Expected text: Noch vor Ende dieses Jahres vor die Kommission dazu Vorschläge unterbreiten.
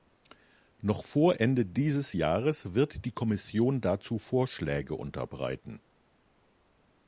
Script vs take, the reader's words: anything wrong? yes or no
yes